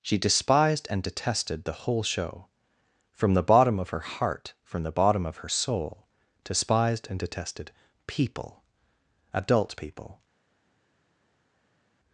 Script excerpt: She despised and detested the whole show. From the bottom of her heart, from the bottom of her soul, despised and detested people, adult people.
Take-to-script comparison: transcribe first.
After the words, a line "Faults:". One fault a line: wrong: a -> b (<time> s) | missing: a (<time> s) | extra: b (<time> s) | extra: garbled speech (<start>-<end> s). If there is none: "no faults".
She despised and detested the whole show. From the bottom of her heart, from the bottom of her soul, despised and detested people, adult people.
Faults:
no faults